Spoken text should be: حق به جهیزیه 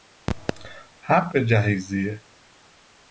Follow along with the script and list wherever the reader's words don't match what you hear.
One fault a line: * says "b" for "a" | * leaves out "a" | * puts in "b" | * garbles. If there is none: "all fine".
all fine